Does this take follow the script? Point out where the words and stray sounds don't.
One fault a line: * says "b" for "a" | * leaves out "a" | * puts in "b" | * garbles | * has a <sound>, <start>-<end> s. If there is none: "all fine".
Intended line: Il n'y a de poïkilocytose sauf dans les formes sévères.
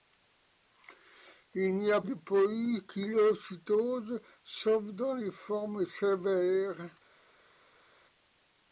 all fine